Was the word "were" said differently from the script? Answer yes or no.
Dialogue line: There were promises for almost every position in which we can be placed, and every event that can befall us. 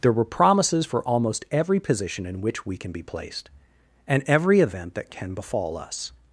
no